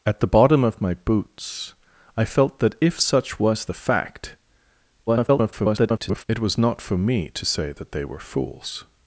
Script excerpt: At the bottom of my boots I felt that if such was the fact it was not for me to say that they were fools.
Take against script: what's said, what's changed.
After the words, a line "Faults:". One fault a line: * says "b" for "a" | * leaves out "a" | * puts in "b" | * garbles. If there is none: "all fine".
At the bottom of my boots I felt that if such was the fact [garbled] it was not for me to say that they were fools.
Faults:
* garbles